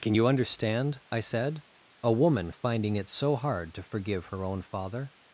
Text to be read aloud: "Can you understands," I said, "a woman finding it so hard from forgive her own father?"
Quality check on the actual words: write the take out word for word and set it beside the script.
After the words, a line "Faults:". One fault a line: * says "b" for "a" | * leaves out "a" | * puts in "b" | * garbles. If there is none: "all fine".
"Can you understand," I said, "a woman finding it so hard to forgive her own father?"
Faults:
* says "understand" for "understands"
* says "to" for "from"